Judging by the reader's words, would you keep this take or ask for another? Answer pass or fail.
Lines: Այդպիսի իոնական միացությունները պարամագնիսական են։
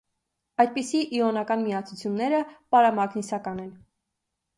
pass